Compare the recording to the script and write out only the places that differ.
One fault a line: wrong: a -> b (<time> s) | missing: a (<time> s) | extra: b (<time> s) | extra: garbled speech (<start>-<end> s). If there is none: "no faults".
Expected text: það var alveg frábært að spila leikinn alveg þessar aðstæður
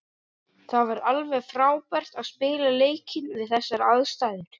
wrong: alveg -> við (3.4 s)